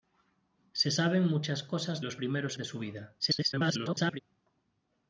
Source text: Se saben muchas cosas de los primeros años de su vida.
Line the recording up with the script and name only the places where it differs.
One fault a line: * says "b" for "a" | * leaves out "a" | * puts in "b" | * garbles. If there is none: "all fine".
* leaves out "de"
* leaves out "años"
* garbles